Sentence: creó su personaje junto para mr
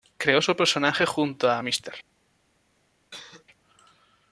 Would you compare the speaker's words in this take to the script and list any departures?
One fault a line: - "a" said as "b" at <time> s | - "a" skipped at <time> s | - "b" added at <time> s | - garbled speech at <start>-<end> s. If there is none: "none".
- "para" said as "a" at 1.5 s